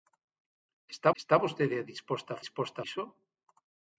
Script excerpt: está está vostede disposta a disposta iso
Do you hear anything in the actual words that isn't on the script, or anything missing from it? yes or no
no